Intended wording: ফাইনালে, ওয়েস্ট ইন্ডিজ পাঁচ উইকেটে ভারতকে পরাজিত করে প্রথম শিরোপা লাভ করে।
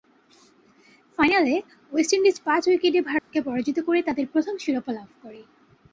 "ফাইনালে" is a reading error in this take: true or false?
false